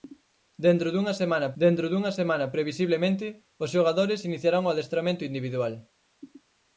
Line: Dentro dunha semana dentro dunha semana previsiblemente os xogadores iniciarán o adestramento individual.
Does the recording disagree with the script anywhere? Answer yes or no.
no